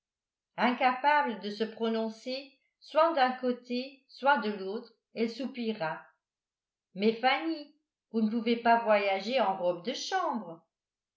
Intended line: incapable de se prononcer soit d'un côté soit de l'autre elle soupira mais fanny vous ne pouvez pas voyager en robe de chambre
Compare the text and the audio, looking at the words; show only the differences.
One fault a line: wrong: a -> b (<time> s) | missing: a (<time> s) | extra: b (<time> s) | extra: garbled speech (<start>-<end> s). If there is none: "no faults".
no faults